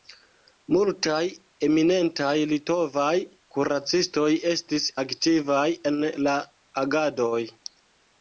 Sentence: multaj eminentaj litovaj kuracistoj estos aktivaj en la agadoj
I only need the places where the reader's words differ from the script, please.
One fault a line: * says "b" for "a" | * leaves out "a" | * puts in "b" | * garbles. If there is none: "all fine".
* says "estis" for "estos"